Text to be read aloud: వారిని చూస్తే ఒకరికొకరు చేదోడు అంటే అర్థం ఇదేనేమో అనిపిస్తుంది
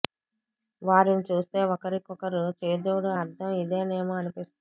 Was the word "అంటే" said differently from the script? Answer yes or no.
yes